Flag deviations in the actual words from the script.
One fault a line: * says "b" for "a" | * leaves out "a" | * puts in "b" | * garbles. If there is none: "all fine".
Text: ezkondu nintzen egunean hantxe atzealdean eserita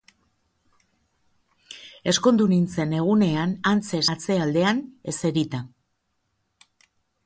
all fine